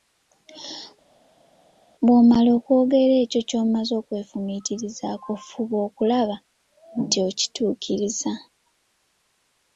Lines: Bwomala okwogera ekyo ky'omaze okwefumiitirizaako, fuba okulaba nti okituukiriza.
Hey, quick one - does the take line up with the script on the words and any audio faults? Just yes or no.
yes